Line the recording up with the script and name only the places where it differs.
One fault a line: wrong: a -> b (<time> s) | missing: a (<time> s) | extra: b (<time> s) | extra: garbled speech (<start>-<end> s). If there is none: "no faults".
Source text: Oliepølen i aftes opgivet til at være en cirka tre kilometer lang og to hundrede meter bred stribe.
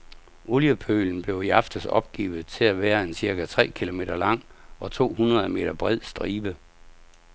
extra: blev (1.2 s)